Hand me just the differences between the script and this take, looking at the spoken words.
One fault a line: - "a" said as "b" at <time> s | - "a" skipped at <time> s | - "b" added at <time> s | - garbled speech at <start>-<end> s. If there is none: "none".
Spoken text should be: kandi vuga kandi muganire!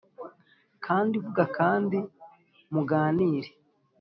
none